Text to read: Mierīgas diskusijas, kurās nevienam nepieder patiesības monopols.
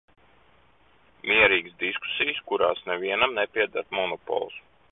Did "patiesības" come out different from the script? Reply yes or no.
yes